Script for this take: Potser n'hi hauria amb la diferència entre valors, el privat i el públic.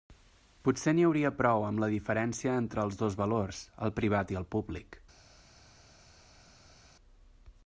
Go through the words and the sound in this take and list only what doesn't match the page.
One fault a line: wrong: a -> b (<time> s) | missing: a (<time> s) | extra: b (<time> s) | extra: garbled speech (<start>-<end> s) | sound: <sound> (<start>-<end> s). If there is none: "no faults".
extra: prou (1.4 s)
extra: els dos (2.9 s)